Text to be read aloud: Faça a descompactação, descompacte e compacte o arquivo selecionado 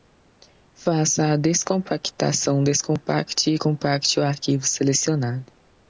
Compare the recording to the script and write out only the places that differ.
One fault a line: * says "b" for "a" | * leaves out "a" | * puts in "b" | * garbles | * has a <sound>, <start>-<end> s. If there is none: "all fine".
all fine